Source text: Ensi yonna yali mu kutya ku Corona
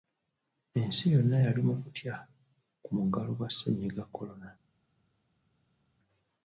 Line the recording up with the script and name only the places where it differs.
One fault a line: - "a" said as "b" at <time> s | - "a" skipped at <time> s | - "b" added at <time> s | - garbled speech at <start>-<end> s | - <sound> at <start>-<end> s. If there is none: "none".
- "muggalo gwa Ssennyiga" added at 3.0 s